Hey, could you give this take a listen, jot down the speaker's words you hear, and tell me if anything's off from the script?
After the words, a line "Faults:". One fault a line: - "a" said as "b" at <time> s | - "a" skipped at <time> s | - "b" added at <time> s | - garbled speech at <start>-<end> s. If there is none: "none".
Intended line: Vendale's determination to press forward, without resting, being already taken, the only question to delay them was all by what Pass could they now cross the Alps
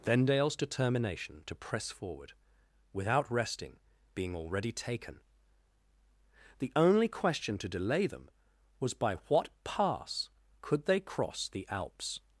Vendale's determination to press forward, without resting, being already taken, the only question to delay them was by what Pass could they cross the Alps
Faults:
- "all" skipped at 8.9 s
- "now" skipped at 11.0 s